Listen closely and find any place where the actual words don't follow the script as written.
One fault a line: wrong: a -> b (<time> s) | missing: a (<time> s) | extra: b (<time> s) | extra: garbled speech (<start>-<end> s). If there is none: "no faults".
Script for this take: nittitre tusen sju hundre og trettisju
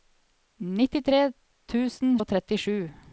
missing: sju hundre (2.2 s)